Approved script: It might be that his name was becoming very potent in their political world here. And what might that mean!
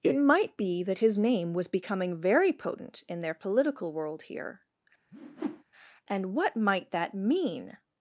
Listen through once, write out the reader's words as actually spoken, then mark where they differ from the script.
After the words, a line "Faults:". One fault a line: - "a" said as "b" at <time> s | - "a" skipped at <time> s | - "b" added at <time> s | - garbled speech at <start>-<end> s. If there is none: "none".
It might be that his name was becoming very potent in their political world here. And what might that mean!
Faults:
none